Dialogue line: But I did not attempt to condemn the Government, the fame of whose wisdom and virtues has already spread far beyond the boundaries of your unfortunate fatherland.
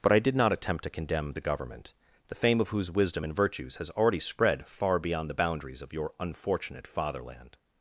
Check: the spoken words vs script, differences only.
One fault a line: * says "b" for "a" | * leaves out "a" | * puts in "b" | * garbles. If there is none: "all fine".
all fine